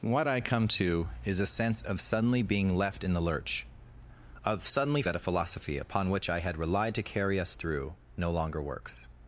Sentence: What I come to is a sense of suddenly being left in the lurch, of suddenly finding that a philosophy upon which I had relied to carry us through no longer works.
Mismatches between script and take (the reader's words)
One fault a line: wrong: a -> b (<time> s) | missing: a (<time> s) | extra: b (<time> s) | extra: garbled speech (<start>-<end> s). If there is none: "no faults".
missing: finding (5.0 s)